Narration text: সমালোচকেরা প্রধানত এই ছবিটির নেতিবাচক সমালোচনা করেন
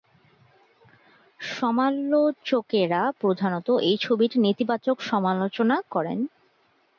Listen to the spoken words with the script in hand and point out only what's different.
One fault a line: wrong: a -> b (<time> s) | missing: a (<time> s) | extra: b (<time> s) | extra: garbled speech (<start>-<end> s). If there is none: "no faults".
no faults